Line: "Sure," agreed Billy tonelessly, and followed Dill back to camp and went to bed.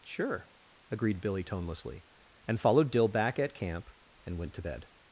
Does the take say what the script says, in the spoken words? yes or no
no